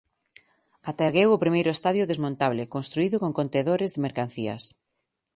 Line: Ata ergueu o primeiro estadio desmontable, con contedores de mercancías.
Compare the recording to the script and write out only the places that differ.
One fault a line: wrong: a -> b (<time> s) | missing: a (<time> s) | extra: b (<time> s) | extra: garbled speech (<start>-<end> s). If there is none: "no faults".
extra: construído (2.7 s)